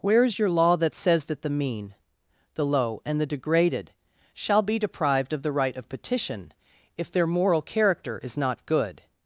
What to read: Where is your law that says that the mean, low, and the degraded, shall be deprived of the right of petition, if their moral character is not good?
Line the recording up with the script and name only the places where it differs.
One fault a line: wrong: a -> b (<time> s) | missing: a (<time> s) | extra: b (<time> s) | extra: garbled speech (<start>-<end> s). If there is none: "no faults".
extra: the (2.5 s)